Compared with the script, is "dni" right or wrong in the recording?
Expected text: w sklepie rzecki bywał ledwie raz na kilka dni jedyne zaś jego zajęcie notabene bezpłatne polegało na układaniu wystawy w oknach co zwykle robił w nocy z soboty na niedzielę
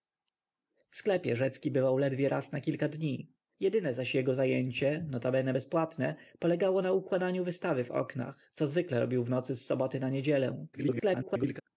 right